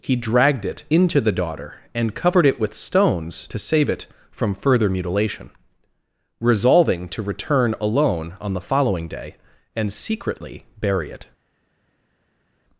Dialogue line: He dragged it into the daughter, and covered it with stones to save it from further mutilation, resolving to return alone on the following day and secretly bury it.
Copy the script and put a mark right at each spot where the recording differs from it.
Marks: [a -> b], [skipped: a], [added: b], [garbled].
He dragged it into the daughter, and covered it with stones to save it from further mutilation, resolving to return alone on the following day and secretly bury it.